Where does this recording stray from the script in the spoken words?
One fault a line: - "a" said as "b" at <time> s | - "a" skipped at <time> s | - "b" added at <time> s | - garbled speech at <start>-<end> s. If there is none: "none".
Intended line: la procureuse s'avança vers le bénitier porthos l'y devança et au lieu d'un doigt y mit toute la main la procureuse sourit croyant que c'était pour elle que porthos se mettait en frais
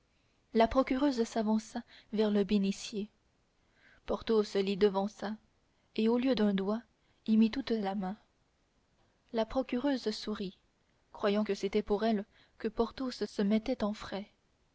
none